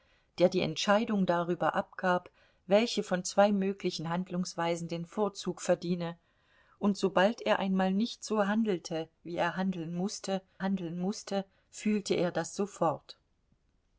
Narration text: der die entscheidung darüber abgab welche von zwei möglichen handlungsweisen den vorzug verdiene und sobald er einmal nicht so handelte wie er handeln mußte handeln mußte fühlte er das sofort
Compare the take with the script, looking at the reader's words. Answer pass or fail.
pass